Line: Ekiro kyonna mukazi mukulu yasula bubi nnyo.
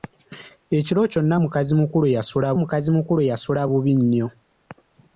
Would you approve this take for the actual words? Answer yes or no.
no